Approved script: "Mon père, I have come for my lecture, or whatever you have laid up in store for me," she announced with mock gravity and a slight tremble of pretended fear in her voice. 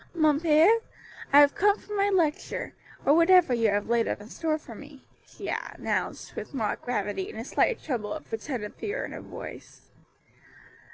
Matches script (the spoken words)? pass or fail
pass